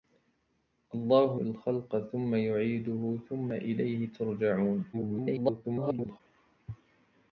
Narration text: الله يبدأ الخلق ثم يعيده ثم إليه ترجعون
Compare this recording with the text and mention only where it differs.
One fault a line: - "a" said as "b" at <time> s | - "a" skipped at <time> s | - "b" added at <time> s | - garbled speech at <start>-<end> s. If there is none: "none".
- "يبدأ" skipped at 1.4 s
- garbled speech at 4.9-6.2 s